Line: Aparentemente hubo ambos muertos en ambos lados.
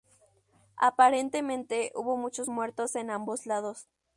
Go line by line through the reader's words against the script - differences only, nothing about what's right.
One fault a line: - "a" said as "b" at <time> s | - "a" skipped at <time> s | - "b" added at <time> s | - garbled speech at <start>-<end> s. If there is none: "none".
- "ambos" said as "muchos" at 2.2 s